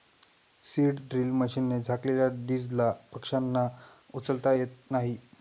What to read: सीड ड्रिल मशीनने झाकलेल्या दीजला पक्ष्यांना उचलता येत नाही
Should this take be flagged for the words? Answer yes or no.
no